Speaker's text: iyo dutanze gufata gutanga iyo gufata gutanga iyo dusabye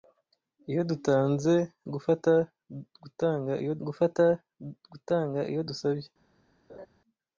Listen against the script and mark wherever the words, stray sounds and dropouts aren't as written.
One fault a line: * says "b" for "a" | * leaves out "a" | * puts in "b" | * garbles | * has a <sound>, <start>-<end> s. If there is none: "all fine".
* has a laugh, 6.7-6.9 s